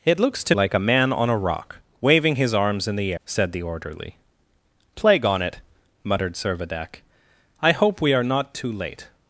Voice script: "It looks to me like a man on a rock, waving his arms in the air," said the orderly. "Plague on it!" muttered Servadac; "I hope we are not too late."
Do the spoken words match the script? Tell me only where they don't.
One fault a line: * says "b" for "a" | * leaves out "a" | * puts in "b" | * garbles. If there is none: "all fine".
* leaves out "me"
* leaves out "air"